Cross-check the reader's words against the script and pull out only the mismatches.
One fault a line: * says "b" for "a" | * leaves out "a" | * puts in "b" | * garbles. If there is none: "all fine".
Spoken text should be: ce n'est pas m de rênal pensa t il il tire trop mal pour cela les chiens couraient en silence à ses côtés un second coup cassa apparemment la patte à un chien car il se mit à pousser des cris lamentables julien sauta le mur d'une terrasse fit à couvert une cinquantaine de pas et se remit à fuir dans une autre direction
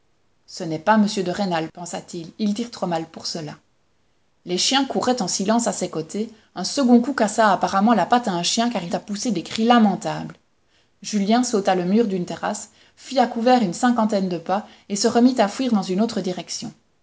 * leaves out "se mit"